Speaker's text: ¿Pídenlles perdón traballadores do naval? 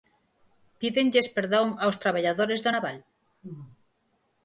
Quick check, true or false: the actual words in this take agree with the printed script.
false